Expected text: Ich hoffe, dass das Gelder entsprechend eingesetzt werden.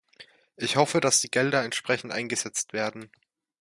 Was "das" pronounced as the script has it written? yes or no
no